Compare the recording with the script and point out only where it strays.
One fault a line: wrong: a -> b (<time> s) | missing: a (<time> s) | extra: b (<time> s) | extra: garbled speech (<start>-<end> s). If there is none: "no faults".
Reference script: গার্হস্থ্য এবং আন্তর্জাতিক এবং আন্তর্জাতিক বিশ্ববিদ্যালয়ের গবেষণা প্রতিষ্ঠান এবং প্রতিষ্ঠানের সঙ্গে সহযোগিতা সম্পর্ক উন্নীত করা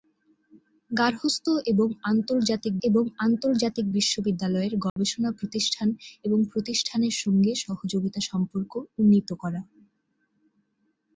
no faults